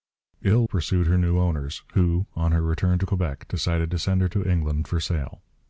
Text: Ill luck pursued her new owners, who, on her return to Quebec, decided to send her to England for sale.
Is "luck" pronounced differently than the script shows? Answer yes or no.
yes